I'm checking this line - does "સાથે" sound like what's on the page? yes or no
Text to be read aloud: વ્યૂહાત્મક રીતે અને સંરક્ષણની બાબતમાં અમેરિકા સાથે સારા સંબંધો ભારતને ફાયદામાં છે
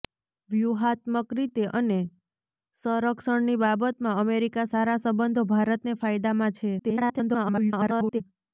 no